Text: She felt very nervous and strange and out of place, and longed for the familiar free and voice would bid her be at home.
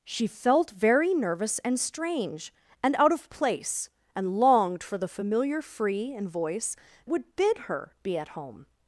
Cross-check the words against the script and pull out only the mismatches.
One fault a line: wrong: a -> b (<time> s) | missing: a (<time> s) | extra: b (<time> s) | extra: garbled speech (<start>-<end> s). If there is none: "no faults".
no faults